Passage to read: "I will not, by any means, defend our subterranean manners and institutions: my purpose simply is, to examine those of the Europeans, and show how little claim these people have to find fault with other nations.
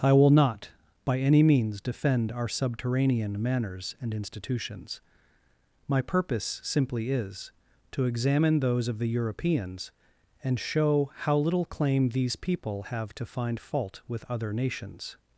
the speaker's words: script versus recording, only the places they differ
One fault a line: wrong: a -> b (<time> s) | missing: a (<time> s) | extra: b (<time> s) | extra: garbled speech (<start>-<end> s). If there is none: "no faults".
no faults